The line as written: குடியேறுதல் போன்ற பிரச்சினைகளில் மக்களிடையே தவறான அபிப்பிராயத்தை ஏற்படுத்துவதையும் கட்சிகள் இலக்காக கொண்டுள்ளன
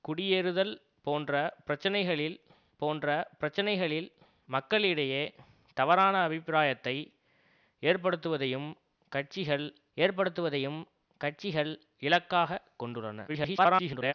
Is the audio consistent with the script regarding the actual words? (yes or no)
no